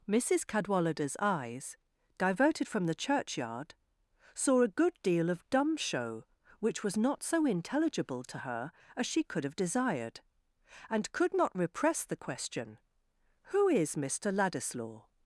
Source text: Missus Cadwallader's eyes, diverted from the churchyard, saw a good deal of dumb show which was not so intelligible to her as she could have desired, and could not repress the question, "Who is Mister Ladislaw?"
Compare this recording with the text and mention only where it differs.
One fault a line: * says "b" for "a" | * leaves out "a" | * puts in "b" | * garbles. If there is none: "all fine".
all fine